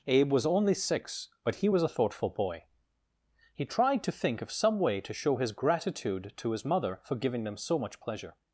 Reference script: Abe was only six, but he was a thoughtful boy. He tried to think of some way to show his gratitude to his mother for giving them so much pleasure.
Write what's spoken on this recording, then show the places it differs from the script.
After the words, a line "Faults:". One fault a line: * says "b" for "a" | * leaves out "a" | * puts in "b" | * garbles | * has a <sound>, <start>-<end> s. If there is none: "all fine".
Abe was only six, but he was a thoughtful boy. He tried to think of some way to show his gratitude to his mother for giving them so much pleasure.
Faults:
all fine